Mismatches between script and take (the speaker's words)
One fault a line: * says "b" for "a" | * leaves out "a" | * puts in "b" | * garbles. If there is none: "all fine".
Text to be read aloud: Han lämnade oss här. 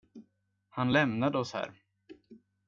all fine